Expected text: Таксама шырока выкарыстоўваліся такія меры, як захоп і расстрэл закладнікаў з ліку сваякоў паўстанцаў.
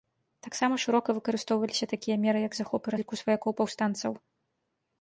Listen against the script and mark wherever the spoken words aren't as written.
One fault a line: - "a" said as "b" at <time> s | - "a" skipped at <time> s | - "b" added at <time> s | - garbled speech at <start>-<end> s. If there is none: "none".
- "расстрэл закладнікаў" skipped at 3.0 s